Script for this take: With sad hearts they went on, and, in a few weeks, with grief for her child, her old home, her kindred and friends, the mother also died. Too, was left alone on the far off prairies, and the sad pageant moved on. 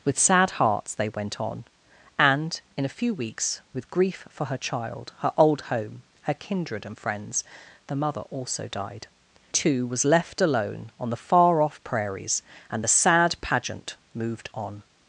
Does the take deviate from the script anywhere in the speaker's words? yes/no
no